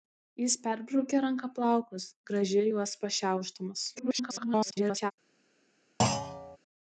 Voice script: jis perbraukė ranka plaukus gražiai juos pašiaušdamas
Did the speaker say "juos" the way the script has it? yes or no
yes